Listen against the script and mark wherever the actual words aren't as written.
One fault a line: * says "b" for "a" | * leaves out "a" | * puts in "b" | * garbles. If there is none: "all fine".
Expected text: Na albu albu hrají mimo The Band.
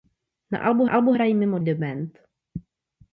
all fine